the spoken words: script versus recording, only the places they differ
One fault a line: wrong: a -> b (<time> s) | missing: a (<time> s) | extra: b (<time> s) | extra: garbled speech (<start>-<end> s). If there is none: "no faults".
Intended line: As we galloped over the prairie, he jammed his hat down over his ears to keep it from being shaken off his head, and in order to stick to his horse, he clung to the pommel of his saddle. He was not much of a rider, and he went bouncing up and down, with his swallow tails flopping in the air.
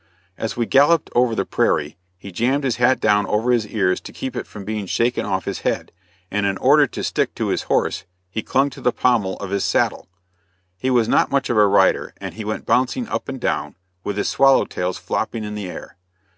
no faults